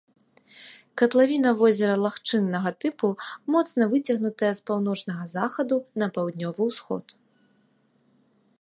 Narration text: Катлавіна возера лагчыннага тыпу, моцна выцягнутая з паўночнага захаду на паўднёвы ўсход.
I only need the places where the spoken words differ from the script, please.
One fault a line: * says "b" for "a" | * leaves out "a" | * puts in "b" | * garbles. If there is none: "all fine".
all fine